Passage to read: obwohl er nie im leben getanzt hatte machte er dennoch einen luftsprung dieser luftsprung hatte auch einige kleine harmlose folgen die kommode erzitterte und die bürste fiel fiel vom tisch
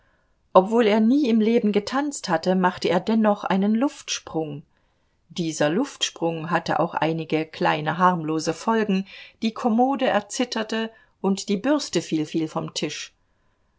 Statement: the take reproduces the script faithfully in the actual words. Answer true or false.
true